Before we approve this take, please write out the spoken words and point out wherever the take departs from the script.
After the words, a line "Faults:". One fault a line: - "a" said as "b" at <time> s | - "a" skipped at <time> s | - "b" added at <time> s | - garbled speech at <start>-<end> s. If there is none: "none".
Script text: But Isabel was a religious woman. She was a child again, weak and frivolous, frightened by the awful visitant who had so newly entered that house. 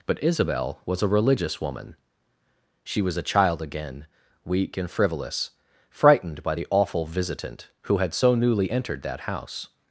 But Isabel was a religious woman. She was a child again, weak and frivolous, frightened by the awful visitant who had so newly entered that house.
Faults:
none